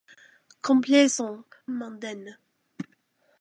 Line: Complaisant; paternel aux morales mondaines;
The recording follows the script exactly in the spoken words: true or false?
false